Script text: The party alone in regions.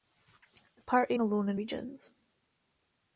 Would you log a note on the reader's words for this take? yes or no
no